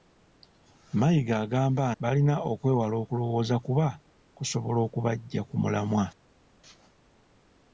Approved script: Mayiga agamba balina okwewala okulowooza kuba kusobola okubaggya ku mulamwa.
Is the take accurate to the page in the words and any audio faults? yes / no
yes